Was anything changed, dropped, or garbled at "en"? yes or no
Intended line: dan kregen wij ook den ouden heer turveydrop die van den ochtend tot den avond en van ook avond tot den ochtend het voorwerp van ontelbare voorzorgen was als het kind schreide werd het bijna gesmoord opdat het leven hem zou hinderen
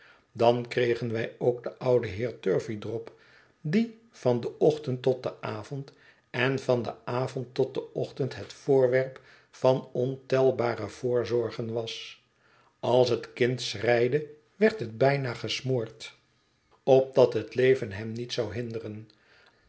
no